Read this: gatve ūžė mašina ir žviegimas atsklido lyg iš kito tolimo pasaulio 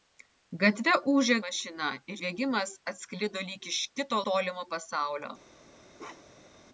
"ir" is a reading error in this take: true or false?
false